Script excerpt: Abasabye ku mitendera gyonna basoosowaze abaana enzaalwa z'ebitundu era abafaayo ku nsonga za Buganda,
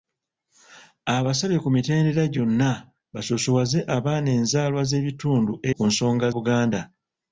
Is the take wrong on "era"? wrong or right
wrong